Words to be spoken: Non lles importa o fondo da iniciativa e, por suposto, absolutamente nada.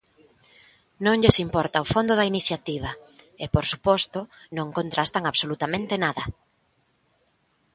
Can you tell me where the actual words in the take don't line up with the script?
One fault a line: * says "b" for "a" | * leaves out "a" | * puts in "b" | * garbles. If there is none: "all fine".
* puts in "non contrastan"